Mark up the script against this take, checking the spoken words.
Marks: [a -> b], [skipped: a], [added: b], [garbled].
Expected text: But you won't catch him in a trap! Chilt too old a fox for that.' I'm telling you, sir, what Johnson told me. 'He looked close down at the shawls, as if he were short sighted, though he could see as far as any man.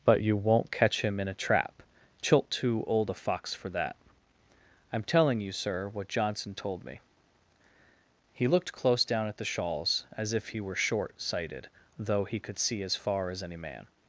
But you won't catch him in a trap! Chilt too old a fox for that.' I'm telling you, sir, what Johnson told me. 'He looked close down at the shawls, as if he were short sighted, though he could see as far as any man.